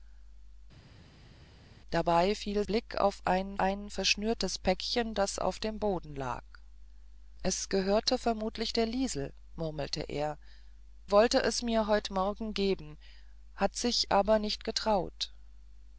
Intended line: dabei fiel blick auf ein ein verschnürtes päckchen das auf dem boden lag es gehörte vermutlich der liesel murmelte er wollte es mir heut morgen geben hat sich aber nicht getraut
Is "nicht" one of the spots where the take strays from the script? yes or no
no